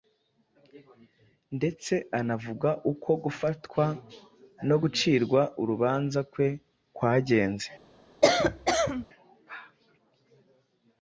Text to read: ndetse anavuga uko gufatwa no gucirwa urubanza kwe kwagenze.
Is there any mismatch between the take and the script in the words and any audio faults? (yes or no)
yes